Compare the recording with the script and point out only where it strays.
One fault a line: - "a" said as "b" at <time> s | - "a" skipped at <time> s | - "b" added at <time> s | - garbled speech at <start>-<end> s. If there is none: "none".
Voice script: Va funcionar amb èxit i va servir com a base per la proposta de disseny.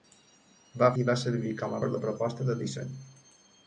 - "funcionar amb èxit" skipped at 0.9 s
- "base" skipped at 1.8 s